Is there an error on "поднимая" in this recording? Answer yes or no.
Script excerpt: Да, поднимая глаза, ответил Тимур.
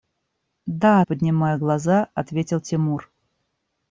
no